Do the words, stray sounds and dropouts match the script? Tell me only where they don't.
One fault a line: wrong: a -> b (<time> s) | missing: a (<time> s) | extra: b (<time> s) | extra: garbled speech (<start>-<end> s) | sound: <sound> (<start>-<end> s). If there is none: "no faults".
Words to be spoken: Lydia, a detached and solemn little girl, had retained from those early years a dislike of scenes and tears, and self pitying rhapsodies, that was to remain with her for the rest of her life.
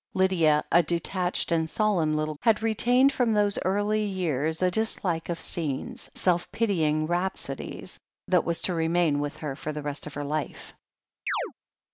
missing: girl (2.3 s)
missing: and tears and (6.1 s)
sound: chirp (11.3-11.5 s)